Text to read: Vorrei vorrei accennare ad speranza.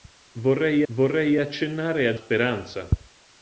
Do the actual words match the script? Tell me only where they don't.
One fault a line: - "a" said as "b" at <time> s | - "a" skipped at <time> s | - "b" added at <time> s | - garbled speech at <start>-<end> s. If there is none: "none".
none